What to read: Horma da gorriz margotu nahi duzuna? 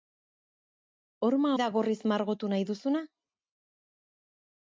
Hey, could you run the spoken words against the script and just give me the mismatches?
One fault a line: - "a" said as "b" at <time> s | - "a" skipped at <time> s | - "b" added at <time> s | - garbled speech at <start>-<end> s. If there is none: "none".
none